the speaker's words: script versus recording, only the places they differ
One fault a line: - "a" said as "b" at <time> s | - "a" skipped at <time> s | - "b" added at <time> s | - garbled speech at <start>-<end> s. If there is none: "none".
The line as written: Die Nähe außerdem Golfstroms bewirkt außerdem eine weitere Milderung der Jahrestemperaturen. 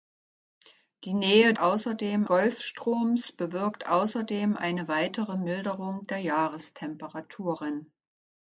none